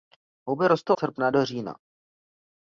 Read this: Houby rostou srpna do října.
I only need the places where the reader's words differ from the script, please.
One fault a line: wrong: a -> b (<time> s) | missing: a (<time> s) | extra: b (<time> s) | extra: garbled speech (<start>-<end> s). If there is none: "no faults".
no faults